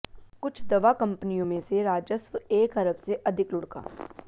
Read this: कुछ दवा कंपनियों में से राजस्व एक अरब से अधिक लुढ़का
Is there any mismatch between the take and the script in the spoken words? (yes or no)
no